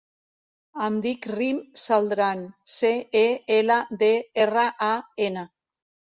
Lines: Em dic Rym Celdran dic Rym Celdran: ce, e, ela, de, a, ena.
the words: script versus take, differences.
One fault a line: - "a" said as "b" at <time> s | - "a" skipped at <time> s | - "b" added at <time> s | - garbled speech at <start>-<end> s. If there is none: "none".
- "dic Rym Celdran" skipped at 2.4 s
- "erra" added at 4.5 s